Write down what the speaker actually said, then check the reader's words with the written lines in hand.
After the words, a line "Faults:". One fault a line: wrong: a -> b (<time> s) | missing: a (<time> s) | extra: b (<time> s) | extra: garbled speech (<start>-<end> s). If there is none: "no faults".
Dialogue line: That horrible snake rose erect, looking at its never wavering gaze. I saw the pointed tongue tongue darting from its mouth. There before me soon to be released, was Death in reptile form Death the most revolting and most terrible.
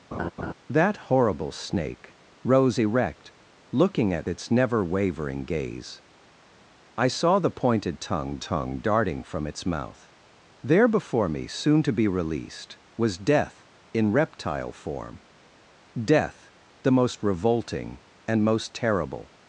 That horrible snake rose erect, looking at its never wavering gaze. I saw the pointed tongue tongue darting from its mouth. There before me soon to be released, was Death in reptile form Death the most revolting and most terrible.
Faults:
no faults